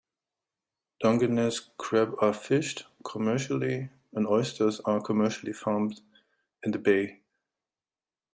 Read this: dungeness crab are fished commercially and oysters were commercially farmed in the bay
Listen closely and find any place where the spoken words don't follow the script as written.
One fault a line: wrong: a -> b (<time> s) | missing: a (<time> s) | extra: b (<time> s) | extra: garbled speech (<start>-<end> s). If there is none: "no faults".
wrong: were -> are (4.9 s)